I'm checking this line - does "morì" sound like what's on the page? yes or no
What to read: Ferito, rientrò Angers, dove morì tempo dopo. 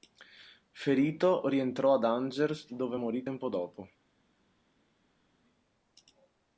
yes